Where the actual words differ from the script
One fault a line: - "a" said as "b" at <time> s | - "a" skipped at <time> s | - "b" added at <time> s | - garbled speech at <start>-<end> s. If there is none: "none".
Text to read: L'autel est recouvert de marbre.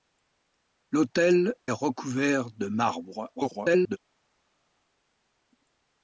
- "est" skipped at 1.5 s
- garbled speech at 3.4-4.0 s